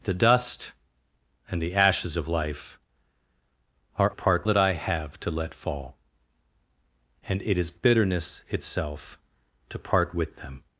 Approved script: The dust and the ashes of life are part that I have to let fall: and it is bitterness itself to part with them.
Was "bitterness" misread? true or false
false